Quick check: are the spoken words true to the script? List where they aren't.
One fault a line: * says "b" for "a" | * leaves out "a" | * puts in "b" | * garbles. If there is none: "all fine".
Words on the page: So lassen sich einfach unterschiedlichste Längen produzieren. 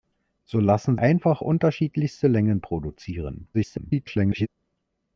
* leaves out "sich"
* garbles